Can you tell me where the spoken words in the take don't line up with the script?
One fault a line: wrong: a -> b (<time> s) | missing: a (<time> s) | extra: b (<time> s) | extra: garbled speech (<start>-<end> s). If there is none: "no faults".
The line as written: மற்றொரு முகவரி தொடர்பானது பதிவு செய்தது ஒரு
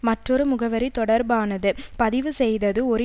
no faults